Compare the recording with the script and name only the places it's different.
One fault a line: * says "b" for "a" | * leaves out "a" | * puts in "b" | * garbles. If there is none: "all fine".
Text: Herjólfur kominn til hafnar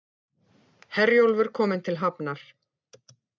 all fine